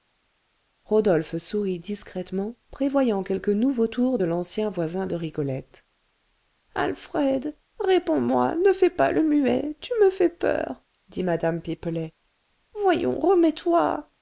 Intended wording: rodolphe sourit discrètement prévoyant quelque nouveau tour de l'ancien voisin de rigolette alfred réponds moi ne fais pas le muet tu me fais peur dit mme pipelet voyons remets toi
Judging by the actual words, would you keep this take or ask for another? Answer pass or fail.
pass